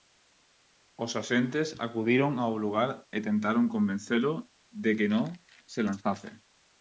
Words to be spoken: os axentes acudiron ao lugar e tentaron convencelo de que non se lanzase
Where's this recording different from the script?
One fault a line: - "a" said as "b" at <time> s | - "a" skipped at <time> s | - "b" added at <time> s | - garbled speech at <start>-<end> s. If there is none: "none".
none